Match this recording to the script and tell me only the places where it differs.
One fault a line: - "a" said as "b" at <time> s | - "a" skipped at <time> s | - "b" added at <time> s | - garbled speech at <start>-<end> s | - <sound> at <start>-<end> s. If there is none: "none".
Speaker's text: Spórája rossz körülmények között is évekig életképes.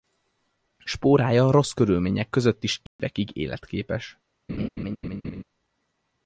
- dropout at 2.9-3.0 s
- laugh at 4.5-5.4 s